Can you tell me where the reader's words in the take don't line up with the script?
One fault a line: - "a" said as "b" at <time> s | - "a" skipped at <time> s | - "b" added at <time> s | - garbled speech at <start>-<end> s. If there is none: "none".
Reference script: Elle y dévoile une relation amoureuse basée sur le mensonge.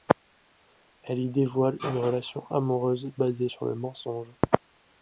none